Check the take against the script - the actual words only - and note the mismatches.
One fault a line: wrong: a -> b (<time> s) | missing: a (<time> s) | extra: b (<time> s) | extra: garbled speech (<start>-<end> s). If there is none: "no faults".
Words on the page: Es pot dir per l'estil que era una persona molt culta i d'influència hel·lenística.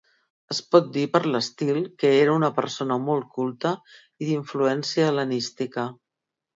no faults